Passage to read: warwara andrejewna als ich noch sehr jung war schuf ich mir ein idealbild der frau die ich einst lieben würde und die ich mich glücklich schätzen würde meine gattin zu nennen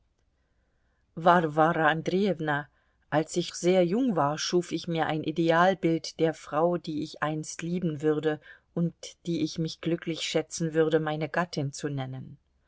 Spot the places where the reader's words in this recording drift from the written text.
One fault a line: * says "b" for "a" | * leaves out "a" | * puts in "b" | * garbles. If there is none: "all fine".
* leaves out "noch"